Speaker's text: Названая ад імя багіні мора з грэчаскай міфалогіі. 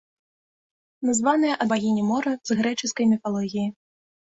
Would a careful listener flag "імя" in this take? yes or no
yes